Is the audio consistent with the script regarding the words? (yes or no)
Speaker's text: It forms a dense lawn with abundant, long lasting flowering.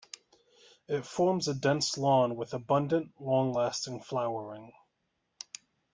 yes